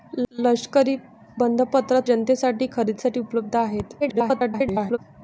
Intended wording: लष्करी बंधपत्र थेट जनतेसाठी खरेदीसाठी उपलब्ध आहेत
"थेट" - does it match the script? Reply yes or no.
no